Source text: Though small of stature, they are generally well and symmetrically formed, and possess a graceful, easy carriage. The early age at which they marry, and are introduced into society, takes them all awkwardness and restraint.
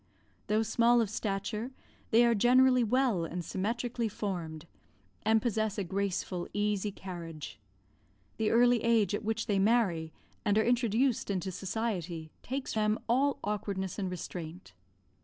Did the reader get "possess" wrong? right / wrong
right